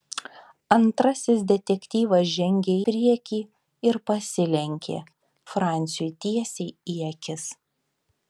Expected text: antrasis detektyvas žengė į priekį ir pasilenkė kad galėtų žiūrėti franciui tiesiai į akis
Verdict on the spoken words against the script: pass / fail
fail